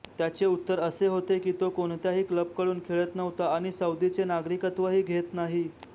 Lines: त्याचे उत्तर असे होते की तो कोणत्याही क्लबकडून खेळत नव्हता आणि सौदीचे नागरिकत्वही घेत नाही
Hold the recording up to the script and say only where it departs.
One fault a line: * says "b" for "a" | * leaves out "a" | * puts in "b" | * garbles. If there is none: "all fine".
all fine